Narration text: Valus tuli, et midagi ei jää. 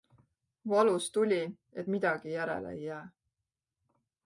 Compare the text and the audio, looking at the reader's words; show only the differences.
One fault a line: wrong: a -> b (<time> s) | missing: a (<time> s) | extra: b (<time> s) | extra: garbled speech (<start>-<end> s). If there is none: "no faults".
extra: järele (2.3 s)